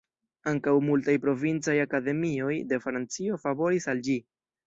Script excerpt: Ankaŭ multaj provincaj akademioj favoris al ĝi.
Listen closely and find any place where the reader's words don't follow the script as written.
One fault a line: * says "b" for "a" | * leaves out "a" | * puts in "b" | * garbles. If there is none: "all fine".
* puts in "de Francio"